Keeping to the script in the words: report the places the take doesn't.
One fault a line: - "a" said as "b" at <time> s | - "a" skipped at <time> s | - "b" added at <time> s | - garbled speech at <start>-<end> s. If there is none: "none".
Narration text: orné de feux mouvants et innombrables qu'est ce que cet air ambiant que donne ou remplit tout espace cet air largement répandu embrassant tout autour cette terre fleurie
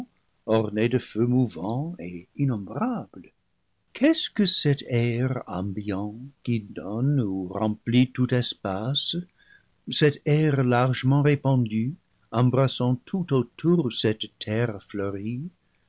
- "que" said as "qui" at 6.4 s